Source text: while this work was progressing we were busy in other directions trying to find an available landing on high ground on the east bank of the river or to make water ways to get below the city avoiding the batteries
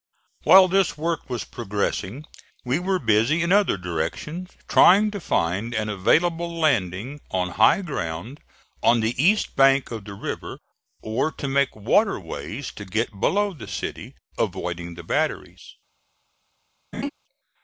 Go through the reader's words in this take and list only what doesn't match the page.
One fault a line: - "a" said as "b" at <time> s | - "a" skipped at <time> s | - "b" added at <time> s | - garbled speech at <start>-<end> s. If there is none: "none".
none